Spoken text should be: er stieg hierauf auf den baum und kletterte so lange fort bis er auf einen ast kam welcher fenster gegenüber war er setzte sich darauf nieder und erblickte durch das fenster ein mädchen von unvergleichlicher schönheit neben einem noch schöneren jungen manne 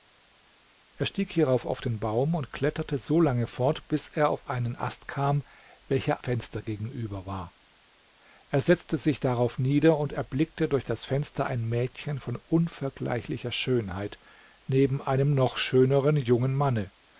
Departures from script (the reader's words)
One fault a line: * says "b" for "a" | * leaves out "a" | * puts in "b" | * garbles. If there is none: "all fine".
all fine